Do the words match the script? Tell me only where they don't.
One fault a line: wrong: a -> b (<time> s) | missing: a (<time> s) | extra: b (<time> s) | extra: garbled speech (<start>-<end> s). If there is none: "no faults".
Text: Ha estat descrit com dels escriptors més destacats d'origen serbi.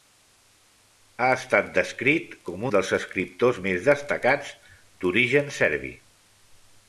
no faults